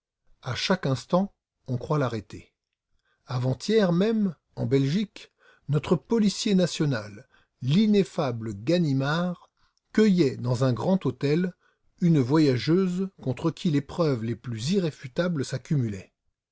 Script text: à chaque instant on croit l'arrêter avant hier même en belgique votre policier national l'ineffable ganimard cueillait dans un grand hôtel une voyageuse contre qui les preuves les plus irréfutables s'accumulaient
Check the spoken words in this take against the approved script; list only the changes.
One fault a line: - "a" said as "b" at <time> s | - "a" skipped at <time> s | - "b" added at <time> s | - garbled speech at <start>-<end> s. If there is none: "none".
- "votre" said as "notre" at 5.7 s